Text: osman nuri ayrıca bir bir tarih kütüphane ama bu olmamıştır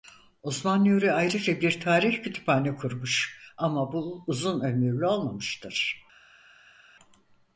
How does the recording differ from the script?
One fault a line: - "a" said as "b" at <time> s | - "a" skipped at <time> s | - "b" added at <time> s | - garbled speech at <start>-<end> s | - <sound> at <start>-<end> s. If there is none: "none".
- "bir" skipped at 1.8 s
- "kurmuş" added at 2.8 s
- "uzun ömürlü" added at 4.3 s